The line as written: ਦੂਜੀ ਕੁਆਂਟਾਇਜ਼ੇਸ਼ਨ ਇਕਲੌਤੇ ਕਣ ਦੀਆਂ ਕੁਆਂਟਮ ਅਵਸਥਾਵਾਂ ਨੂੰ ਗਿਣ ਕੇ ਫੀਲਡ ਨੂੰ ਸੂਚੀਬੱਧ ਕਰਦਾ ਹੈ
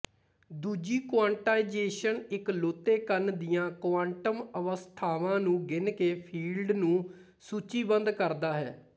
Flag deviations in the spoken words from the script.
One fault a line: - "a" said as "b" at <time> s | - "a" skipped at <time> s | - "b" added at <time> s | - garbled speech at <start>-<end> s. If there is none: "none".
none